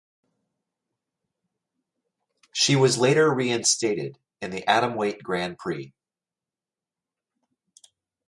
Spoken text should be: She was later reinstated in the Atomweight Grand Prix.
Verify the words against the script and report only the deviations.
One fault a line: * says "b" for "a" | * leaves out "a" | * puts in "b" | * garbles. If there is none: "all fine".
all fine